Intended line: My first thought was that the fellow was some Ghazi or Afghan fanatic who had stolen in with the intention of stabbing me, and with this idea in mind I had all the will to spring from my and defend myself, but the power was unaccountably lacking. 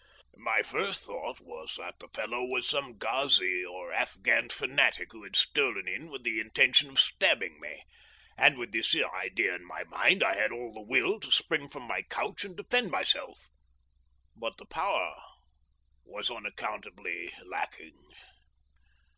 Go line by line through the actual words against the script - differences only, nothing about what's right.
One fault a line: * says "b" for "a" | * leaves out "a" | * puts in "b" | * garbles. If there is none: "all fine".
* puts in "my"
* puts in "couch"